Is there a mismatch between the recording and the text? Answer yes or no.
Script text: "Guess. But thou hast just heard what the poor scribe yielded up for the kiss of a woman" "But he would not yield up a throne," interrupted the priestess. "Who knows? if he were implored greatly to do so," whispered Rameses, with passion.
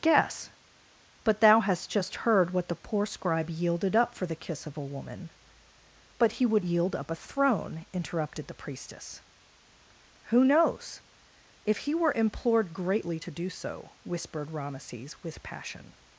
yes